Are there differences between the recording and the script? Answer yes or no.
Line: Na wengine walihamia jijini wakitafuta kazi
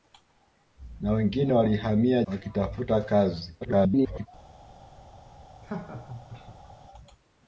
yes